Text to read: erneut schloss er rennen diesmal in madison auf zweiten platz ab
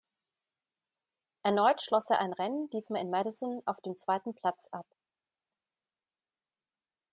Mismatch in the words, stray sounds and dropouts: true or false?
true